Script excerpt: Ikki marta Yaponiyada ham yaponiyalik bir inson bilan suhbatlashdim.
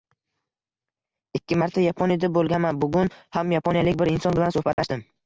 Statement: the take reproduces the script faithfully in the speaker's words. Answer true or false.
false